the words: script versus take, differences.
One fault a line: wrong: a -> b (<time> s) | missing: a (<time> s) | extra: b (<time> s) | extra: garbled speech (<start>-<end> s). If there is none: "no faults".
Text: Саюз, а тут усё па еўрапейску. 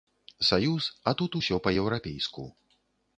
no faults